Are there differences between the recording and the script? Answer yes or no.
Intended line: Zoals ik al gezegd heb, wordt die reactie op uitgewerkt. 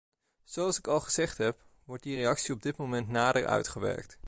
yes